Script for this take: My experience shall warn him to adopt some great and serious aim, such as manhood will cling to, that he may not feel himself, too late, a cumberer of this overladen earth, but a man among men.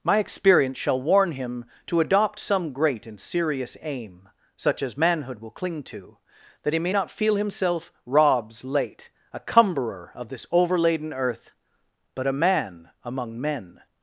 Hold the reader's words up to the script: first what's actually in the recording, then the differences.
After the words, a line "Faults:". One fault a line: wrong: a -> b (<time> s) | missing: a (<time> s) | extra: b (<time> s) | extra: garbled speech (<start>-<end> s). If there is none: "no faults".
My experience shall warn him to adopt some great and serious aim, such as manhood will cling to, that he may not feel himself, robs late, a cumberer of this overladen earth, but a man among men.
Faults:
wrong: too -> robs (8.1 s)